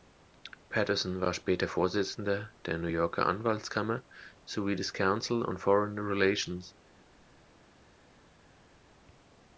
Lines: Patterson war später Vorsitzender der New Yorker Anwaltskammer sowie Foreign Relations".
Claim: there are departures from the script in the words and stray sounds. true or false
true